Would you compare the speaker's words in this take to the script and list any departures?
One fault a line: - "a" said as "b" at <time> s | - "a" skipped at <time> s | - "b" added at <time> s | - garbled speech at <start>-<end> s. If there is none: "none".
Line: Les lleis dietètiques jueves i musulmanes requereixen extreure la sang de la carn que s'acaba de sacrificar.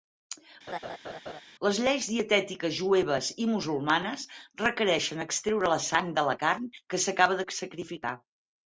none